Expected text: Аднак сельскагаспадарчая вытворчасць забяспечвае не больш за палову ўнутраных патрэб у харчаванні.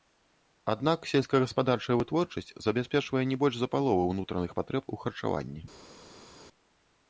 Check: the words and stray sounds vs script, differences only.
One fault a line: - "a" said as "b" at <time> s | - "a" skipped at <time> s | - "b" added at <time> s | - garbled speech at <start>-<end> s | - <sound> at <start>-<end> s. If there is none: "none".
none